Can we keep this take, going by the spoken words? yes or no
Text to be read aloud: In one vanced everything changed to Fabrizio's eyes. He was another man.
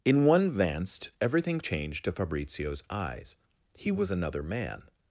yes